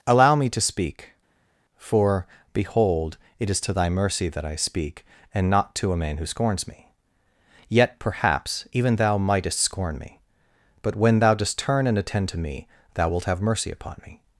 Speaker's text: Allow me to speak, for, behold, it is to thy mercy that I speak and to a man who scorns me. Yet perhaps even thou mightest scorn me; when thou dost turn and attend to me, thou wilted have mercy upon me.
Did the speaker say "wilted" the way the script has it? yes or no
no